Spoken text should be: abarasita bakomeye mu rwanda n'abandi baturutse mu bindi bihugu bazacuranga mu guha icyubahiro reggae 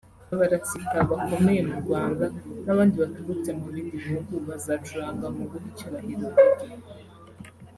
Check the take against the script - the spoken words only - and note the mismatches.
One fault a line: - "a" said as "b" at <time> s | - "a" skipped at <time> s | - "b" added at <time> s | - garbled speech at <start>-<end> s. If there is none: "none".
none